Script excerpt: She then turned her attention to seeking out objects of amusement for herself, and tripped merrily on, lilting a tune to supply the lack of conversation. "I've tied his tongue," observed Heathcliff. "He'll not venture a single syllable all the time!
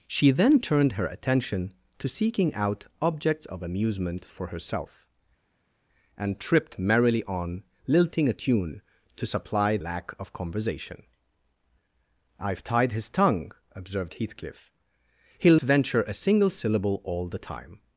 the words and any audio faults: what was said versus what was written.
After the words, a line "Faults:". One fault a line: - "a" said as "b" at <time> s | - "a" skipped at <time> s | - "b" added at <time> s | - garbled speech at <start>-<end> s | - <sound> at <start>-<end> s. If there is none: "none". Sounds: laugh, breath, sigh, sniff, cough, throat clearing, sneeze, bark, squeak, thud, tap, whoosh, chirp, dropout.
She then turned her attention to seeking out objects of amusement for herself, and tripped merrily on, lilting a tune to supply lack of conversation. "I've tied his tongue," observed Heathcliff. "He'll venture a single syllable all the time!
Faults:
- "the" skipped at 9.8 s
- "not" skipped at 15.6 s